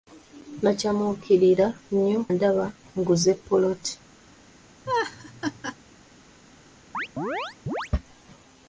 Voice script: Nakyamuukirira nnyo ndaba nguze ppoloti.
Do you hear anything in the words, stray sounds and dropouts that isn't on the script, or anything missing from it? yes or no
yes